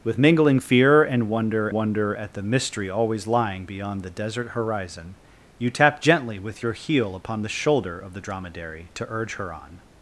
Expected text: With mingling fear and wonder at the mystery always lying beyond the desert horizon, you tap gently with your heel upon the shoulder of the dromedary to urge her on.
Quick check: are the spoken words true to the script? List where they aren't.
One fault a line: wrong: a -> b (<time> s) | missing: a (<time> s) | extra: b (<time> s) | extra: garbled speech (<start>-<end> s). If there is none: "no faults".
extra: wonder (1.7 s)